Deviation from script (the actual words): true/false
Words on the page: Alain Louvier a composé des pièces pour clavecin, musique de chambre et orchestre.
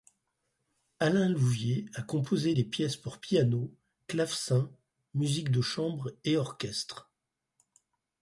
true